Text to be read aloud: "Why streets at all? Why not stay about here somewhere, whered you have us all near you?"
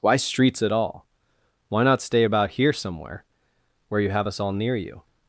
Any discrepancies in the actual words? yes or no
yes